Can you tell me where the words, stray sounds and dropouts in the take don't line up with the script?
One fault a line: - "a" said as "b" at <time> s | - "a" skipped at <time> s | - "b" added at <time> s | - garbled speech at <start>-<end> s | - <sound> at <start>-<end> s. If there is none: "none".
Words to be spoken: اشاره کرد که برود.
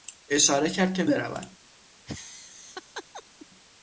- laugh at 2.1-3.5 s